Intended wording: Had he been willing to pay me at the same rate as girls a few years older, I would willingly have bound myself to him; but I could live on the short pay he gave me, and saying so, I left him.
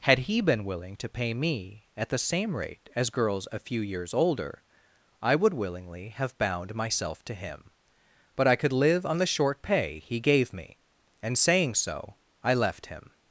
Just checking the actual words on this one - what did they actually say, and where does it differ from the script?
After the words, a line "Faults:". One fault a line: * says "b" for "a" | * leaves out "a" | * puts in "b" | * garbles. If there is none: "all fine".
Had he been willing to pay me at the same rate as girls a few years older, I would willingly have bound myself to him; but I could live on the short pay he gave me, and saying so, I left him.
Faults:
all fine